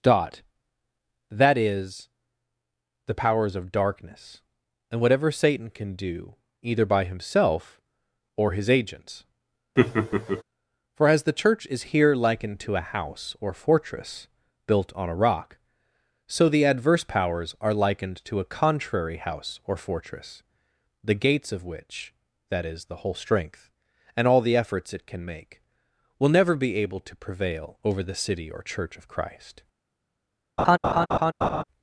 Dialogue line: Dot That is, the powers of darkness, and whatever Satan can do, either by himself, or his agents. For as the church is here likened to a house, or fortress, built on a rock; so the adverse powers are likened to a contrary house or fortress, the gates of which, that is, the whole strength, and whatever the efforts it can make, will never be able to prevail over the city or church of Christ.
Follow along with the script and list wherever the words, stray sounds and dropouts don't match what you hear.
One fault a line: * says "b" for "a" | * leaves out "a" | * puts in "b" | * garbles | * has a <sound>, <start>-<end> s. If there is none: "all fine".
* has a laugh, 9.8-10.4 s
* says "all" for "whatever"
* has a laugh, 30.6-31.6 s